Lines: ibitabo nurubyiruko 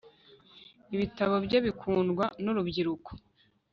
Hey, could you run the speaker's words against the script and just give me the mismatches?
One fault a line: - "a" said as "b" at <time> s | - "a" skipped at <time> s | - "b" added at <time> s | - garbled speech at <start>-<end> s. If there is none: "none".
- "bye bikundwa" added at 1.4 s